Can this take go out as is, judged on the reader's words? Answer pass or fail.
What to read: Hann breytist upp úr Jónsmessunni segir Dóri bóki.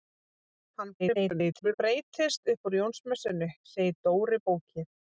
fail